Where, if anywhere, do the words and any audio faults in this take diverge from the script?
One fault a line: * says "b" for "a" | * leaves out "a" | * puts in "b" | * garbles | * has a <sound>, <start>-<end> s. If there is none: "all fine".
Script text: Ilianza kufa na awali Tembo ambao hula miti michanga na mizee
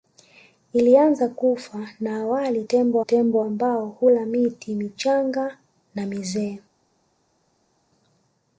* puts in "Tembo"